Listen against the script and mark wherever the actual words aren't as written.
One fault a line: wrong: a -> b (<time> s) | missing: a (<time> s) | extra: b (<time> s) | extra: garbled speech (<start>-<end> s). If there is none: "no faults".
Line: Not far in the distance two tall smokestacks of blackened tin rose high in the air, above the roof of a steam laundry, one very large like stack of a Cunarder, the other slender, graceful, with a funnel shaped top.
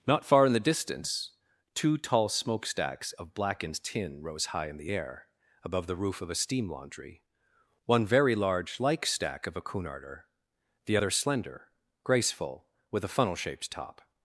no faults